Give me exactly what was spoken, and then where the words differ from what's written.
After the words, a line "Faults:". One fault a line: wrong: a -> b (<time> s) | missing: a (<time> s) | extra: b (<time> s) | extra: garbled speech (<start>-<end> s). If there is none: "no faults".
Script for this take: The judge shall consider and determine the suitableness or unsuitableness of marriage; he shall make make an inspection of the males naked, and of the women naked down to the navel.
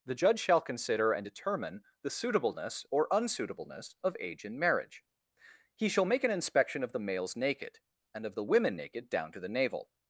The judge shall consider and determine the suitableness or unsuitableness of age in marriage; he shall make an inspection of the males naked, and of the women naked down to the navel.
Faults:
extra: age in (4.2 s)
missing: make (6.2 s)